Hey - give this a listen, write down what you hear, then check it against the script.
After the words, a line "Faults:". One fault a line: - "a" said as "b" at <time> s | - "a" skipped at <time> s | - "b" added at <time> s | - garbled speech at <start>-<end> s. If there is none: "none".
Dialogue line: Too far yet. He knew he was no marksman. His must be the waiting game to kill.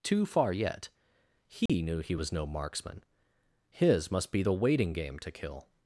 Too far yet. He knew he was no marksman. His must be the waiting game to kill.
Faults:
none